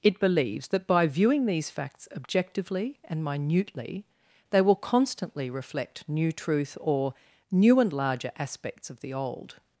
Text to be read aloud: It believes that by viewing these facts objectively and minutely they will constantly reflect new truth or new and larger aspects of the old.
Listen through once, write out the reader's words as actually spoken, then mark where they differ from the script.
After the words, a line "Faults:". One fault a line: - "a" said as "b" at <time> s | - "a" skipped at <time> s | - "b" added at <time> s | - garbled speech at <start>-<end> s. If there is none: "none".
It believes that by viewing these facts objectively and minutely they will constantly reflect new truth or new and larger aspects of the old.
Faults:
none